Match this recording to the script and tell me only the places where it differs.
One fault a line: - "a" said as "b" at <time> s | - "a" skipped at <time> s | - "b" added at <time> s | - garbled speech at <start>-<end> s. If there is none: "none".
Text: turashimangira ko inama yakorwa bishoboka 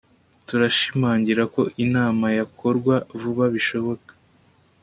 - "vuba" added at 3.2 s